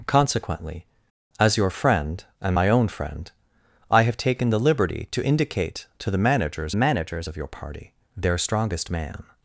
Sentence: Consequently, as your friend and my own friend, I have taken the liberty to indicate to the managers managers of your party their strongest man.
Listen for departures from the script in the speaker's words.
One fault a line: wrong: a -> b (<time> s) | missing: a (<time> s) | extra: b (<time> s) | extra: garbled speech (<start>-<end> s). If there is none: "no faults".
no faults